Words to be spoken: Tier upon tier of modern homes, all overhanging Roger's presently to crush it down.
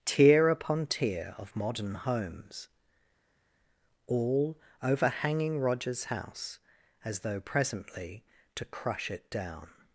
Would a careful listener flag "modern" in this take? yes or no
no